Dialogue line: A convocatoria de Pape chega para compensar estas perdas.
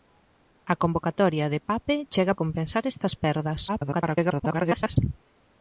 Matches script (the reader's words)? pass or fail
fail